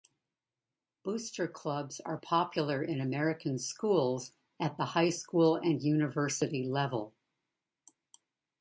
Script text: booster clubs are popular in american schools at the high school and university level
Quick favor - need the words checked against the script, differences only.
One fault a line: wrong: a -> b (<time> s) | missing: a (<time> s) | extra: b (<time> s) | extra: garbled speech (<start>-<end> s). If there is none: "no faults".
no faults